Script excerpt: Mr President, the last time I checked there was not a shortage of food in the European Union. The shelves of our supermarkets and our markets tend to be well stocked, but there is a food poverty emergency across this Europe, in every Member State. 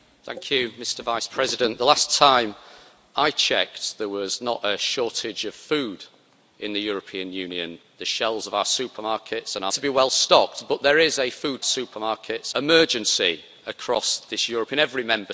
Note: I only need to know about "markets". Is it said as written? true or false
false